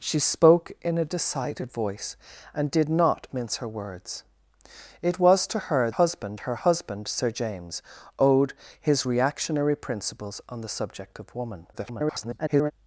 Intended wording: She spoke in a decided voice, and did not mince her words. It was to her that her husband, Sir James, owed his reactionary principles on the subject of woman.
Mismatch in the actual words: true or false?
true